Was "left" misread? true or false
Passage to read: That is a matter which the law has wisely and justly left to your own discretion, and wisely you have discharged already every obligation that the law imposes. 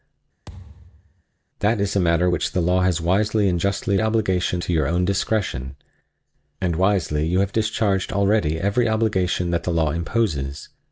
true